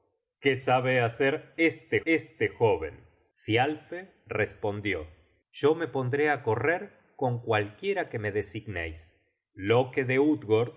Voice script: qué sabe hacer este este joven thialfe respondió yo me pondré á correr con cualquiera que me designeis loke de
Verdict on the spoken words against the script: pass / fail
pass